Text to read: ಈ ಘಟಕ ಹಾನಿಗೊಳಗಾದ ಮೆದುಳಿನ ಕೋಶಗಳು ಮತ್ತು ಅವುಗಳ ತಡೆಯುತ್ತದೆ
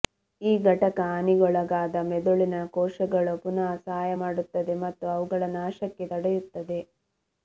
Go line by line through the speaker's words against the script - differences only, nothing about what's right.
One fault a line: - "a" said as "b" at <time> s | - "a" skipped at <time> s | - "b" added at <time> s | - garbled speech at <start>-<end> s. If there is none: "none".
- "ಪುನಃ ಸಹಾಯ ಮಾಡುತ್ತದೆ" added at 3.4 s
- "ನಾಶಕ್ಕೆ" added at 5.6 s